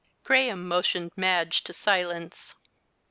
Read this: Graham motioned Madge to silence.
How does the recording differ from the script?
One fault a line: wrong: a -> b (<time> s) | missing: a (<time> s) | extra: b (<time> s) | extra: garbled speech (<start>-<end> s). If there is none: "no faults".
no faults